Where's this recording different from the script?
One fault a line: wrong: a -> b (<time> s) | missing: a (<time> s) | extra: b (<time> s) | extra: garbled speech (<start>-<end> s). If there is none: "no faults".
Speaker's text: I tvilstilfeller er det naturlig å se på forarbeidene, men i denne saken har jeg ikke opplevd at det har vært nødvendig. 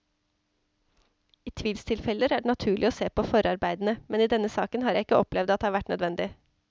no faults